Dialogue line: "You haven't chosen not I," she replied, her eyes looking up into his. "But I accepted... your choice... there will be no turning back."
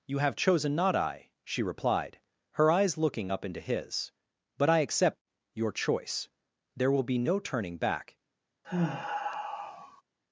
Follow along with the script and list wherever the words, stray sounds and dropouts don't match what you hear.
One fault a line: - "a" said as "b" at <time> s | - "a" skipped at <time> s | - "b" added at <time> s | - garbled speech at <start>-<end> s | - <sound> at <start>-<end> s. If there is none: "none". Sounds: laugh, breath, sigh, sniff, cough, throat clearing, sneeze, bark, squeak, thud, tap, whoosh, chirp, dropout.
- "haven't" said as "have" at 0.2 s
- "accepted" said as "accept" at 4.8 s
- sigh at 8.6-10.0 s